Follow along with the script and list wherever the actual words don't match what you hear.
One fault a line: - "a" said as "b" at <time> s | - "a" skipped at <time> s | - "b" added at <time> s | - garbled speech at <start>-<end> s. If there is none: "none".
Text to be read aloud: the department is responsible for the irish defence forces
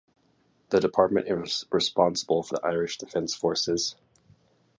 none